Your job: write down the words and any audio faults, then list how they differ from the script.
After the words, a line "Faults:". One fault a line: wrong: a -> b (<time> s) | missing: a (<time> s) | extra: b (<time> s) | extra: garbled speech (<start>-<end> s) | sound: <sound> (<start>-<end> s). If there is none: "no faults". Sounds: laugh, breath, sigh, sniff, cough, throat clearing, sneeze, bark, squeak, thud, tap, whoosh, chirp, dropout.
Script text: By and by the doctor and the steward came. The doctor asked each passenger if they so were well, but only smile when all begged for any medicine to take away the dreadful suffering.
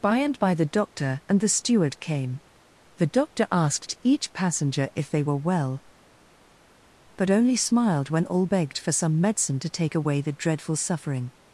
By and by the doctor and the steward came. The doctor asked each passenger if they were well, but only smiled when all begged for some medicine to take away the dreadful suffering.
Faults:
missing: so (5.2 s)
wrong: smile -> smiled (7.6 s)
wrong: any -> some (8.9 s)